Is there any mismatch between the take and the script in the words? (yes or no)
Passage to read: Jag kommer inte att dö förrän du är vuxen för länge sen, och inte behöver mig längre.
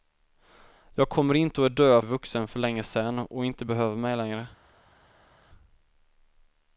yes